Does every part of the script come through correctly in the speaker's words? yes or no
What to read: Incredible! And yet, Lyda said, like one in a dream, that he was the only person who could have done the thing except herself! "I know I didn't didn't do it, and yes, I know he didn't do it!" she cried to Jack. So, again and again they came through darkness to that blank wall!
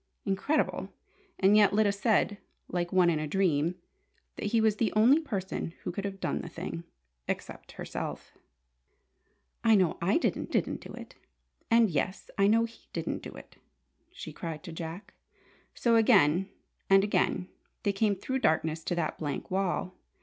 yes